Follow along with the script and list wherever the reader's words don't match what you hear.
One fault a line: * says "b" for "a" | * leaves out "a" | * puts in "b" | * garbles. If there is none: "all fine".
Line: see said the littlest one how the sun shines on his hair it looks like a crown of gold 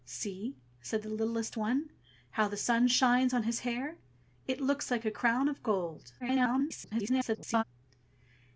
* garbles